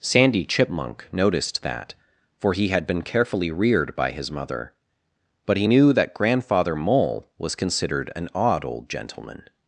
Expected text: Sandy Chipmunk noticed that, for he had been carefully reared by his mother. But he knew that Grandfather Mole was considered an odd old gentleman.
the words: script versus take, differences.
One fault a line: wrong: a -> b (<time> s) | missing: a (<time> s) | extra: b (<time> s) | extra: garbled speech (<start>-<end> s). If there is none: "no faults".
no faults